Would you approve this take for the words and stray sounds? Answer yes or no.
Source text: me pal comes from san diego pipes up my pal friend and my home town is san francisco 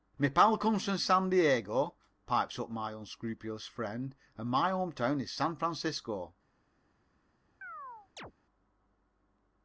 no